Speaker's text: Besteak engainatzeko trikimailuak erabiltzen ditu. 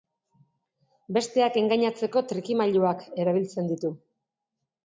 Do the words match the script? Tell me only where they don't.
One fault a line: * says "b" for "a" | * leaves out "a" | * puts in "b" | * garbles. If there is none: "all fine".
all fine